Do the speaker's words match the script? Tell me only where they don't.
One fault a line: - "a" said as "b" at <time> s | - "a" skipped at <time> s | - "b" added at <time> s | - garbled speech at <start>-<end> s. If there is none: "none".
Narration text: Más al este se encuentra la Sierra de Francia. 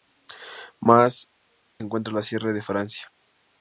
- "al este se" skipped at 1.3 s